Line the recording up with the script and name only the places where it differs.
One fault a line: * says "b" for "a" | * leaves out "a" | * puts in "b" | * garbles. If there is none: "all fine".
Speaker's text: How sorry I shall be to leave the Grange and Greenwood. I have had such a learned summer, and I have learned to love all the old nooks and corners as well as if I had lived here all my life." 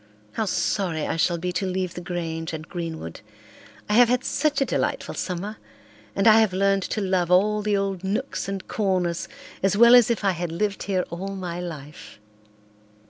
* says "delightful" for "learned"